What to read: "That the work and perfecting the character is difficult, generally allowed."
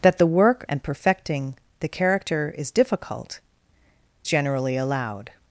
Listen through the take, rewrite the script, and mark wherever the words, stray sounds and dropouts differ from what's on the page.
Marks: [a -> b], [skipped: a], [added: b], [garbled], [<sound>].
"That the work and perfecting the character is difficult, generally allowed."